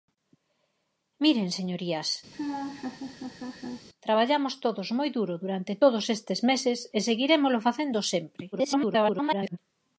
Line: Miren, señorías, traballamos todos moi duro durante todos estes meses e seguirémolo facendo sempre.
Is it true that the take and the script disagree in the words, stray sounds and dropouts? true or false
true